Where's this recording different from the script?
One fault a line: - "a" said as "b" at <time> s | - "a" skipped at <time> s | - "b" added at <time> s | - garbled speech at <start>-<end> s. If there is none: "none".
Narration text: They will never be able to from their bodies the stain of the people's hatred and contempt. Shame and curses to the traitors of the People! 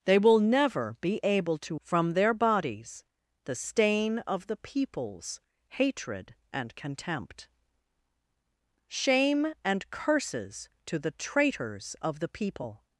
none